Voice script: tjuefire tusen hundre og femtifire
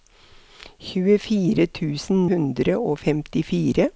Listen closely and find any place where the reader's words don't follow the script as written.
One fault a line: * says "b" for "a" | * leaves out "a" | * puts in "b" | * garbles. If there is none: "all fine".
all fine